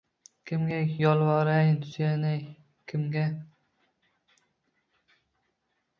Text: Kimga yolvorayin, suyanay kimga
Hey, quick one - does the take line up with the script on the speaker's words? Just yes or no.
yes